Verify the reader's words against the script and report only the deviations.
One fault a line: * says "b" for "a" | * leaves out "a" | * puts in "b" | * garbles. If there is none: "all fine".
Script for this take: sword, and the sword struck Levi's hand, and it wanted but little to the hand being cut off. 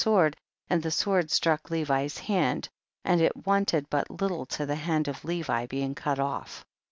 * puts in "of Levi"